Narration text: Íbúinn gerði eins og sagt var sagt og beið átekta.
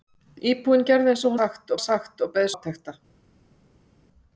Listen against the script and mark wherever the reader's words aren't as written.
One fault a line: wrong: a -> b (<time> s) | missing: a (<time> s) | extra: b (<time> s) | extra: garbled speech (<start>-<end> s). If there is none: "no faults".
no faults